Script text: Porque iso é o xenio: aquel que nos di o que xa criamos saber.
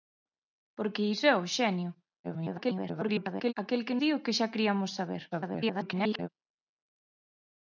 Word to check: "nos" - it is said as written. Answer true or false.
false